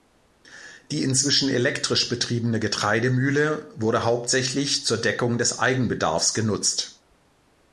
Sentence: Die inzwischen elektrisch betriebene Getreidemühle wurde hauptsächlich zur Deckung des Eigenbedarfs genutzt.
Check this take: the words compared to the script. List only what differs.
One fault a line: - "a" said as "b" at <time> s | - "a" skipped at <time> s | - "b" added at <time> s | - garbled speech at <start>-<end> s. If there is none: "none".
none